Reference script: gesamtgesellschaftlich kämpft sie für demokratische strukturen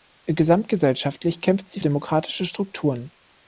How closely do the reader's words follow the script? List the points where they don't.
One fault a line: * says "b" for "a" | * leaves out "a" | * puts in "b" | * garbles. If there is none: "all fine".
* leaves out "für"